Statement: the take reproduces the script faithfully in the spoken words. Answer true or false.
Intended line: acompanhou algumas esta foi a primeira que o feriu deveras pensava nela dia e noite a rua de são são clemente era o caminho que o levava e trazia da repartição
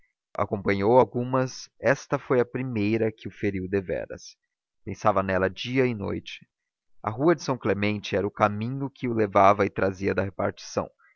false